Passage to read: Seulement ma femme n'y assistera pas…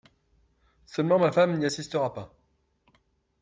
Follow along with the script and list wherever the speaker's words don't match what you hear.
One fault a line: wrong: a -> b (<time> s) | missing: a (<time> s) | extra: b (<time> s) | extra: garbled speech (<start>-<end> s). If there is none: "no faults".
no faults